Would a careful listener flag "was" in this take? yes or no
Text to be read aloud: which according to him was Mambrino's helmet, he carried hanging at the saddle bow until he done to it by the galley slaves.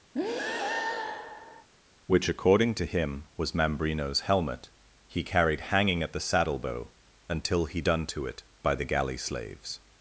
no